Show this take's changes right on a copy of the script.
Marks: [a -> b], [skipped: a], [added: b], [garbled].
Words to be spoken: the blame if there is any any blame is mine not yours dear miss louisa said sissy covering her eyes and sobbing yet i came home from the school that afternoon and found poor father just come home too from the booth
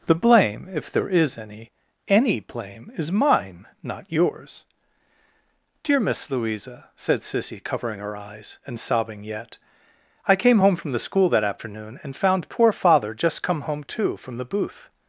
the blame if there is any any blame is mine not yours dear miss louisa said sissy covering her eyes and sobbing yet i came home from the school that afternoon and found poor father just come home too from the booth